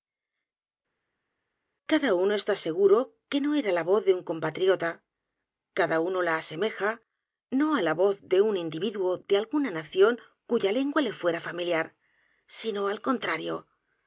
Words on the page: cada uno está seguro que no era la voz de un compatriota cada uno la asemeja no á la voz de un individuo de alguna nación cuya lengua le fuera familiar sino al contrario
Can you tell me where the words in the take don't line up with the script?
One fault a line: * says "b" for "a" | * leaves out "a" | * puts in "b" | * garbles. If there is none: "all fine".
all fine